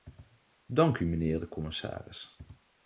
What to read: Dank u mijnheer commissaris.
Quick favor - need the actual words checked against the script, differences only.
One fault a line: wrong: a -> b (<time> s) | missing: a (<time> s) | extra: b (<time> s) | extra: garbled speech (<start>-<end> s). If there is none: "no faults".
extra: de (1.4 s)